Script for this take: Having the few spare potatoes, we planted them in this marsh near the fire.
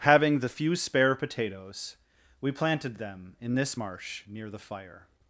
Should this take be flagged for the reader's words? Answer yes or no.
no